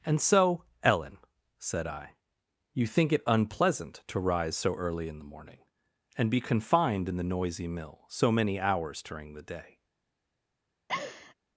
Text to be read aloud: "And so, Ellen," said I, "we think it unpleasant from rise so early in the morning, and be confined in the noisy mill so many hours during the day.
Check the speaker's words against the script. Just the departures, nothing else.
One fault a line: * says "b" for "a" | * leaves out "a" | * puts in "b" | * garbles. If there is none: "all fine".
* says "you" for "we"
* says "to" for "from"